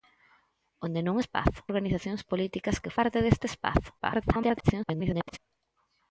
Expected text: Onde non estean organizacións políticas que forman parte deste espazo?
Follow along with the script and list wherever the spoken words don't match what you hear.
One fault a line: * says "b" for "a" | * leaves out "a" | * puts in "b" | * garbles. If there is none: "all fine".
* says "espazo" for "estean"
* leaves out "forman"
* garbles